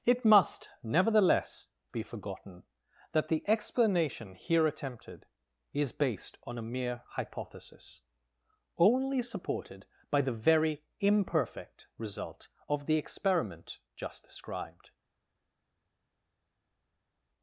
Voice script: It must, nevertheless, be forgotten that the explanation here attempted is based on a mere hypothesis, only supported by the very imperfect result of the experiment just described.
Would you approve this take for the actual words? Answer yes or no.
yes